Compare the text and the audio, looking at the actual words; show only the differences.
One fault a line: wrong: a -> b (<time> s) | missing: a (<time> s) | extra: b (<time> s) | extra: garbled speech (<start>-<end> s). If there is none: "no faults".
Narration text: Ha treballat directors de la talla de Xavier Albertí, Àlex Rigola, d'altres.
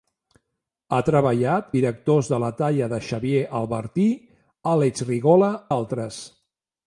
no faults